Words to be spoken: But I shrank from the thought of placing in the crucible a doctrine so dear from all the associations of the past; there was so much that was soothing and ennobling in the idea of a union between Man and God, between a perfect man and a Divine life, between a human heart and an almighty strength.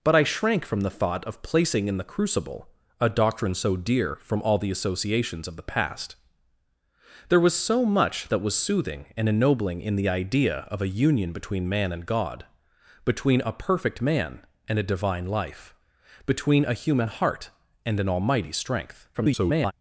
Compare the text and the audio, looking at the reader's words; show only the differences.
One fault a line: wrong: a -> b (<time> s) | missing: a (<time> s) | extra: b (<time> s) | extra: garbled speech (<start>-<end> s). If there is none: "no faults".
extra: garbled speech (19.1-19.7 s)